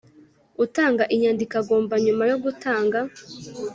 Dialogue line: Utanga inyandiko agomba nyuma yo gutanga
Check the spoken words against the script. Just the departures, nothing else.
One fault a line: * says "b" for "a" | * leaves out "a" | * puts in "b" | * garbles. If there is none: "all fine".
all fine